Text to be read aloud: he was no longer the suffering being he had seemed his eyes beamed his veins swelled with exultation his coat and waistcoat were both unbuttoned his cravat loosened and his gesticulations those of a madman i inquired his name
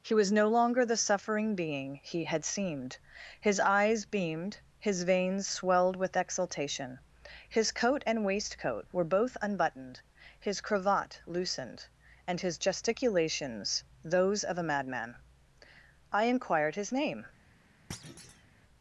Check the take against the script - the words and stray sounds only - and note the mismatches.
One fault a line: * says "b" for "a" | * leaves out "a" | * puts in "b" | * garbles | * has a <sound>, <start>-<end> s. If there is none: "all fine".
* has a thud, 17.9-18.5 s